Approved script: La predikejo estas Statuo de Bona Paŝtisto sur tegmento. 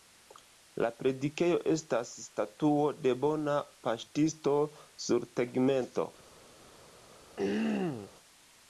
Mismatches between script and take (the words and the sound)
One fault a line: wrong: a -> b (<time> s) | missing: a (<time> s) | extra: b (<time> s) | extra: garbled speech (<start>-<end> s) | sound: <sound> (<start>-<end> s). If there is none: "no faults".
sound: throat clearing (7.4-8.1 s)